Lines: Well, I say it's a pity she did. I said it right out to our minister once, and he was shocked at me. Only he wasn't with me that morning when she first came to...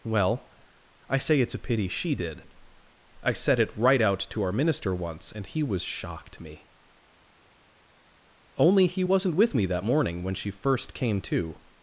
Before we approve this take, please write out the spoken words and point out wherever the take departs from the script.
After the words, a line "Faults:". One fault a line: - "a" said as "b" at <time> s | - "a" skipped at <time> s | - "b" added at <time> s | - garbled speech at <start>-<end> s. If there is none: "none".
Well, I say it's a pity she did. I said it right out to our minister once, and he was shocked me. Only he wasn't with me that morning when she first came to...
Faults:
- "at" skipped at 6.4 s